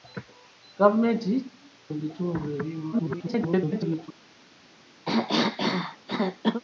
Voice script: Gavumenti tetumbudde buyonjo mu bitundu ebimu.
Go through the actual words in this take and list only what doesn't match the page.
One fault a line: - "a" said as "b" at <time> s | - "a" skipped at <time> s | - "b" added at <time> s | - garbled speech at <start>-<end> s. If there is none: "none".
- "tetumbudde buyonjo" skipped at 1.3 s
- garbled speech at 2.9-4.1 s